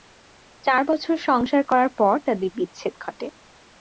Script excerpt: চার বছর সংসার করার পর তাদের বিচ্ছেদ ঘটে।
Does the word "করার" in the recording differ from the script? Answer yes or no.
no